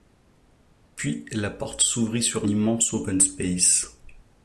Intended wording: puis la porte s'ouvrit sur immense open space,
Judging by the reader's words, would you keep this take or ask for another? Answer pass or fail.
pass